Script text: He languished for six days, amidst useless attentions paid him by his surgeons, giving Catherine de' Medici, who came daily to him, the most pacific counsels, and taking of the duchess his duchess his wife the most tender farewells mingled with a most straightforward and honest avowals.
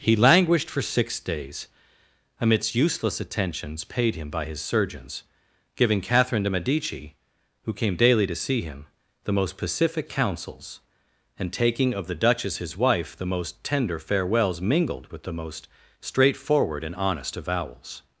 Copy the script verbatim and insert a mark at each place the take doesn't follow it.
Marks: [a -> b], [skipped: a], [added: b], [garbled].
He languished for six days, amidst useless attentions paid him by his surgeons, giving Catherine de' Medici, who came daily to [added: see] him, the most pacific counsels, and taking of the duchess his [skipped: duchess his] wife the most tender farewells mingled with [a -> the] most straightforward and honest avowals.